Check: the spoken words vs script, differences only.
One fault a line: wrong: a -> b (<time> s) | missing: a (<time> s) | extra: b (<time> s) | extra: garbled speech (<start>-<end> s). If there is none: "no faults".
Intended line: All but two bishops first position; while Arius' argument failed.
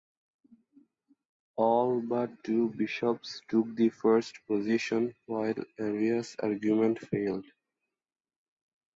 extra: took the (3.5 s)